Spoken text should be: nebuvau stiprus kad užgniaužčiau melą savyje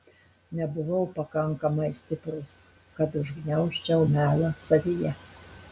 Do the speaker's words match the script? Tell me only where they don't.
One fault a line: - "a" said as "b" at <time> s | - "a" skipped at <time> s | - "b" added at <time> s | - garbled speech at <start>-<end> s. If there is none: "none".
- "pakankamai" added at 1.2 s